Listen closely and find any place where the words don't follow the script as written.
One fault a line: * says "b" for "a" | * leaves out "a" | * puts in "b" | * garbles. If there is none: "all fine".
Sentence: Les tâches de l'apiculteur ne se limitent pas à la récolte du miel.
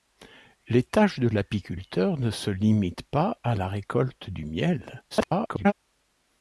* garbles